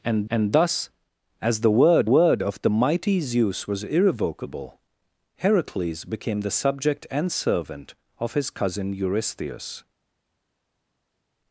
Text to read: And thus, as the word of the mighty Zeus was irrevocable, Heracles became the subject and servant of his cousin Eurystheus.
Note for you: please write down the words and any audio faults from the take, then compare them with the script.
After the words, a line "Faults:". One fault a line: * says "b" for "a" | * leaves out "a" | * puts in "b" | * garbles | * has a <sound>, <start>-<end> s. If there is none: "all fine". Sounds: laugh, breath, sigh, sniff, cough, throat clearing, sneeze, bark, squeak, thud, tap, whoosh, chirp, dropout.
And and thus, as the word word of the mighty Zeus was irrevocable, Heracles became the subject and servant of his cousin Eurystheus.
Faults:
* puts in "and"
* puts in "word"